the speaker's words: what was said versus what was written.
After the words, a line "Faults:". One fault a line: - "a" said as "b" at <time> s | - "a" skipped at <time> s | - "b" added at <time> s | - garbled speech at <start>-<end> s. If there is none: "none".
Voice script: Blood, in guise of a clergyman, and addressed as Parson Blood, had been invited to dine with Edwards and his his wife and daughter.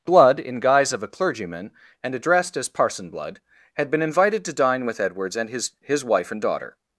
Blood, in guise of a clergyman, and addressed as Parson Blood, had been invited to dine with Edwards and his his wife and daughter.
Faults:
none